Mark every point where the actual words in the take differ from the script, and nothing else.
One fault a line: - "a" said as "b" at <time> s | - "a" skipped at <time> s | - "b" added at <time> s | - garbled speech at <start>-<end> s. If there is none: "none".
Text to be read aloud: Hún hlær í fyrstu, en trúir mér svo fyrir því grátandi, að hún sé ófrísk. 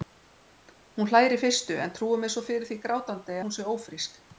- "að" skipped at 3.4 s